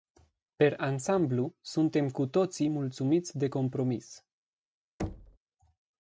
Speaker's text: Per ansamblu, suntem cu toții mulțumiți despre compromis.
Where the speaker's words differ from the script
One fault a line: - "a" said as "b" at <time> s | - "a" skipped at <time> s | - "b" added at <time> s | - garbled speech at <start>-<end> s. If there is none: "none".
- "despre" said as "de" at 3.4 s